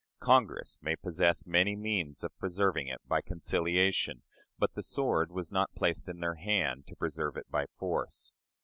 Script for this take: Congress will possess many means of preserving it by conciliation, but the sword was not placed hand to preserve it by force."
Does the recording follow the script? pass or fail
fail